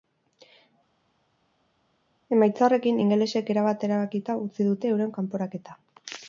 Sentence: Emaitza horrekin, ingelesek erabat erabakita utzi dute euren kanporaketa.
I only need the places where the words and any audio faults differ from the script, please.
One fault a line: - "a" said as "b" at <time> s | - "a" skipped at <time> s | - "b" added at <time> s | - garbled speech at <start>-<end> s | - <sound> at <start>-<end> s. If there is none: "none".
none